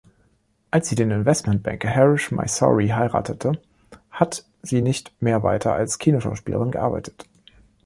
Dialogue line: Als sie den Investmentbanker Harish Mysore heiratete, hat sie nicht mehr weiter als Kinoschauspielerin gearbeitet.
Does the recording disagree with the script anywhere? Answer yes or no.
no